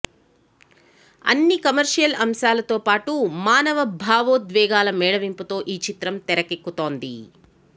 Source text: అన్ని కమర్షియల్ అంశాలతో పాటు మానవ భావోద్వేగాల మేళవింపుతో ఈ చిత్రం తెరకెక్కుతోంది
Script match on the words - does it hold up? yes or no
yes